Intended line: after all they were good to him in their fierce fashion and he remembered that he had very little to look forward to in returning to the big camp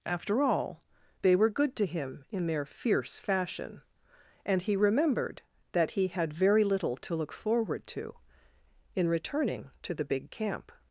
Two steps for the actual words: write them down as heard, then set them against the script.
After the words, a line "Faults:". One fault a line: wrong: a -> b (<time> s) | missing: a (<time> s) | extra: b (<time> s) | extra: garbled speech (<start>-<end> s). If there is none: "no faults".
after all they were good to him in their fierce fashion and he remembered that he had very little to look forward to in returning to the big camp
Faults:
no faults